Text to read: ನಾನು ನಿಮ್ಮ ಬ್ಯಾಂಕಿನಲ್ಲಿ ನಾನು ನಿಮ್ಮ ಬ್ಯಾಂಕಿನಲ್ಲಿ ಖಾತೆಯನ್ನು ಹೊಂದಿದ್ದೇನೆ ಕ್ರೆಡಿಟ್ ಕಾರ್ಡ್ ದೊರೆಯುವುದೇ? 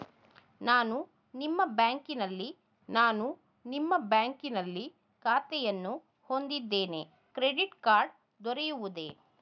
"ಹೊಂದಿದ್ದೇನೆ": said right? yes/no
yes